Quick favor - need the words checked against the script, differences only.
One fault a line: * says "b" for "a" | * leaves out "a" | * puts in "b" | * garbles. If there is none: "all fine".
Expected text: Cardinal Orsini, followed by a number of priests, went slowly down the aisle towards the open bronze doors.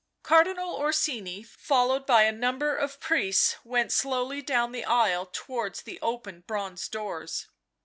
all fine